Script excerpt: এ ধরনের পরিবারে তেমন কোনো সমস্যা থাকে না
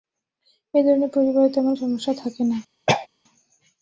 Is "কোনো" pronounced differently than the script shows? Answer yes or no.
yes